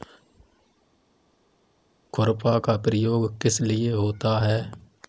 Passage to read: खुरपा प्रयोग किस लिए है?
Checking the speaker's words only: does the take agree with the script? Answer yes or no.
no